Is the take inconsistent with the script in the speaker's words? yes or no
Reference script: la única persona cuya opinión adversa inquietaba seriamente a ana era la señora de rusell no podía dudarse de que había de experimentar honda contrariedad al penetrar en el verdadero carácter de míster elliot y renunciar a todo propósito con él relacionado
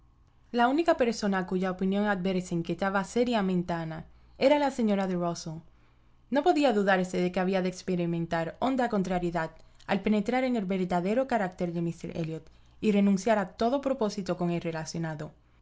no